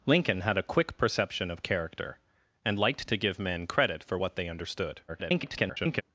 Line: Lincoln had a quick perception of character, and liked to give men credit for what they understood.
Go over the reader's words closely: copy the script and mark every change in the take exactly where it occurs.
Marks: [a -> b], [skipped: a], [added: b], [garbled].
Lincoln had a quick perception of character, and liked to give men credit for what they understood. [garbled]